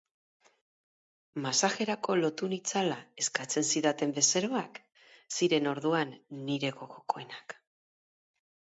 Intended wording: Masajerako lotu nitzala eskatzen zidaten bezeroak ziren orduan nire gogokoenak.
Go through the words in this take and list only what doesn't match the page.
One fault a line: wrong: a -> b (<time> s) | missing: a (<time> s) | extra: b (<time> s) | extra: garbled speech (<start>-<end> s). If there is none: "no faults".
no faults